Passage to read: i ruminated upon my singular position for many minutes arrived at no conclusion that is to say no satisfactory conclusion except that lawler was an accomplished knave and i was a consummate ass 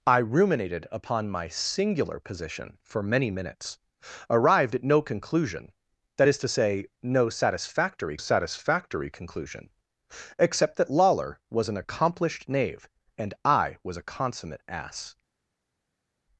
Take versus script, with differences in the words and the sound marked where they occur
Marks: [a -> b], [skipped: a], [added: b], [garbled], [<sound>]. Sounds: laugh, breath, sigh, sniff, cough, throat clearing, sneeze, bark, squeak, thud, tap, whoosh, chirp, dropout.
i ruminated upon my singular position for many minutes arrived at no conclusion that is to say no satisfactory [added: satisfactory] conclusion except that lawler was an accomplished knave and i was a consummate ass